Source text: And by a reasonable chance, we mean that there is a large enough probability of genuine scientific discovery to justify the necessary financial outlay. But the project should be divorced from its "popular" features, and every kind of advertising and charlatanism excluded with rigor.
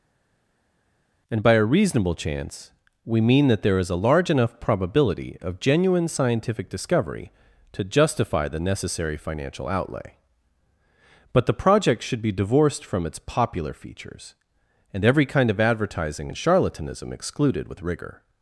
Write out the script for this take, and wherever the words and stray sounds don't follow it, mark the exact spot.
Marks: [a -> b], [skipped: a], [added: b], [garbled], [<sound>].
And by a reasonable chance, we mean that there is a large enough probability of genuine scientific discovery to justify the necessary financial outlay. But the project should be divorced from its "popular" features, and every kind of advertising and charlatanism excluded with rigor.